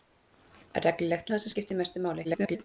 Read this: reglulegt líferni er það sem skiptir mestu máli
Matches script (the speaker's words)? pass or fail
fail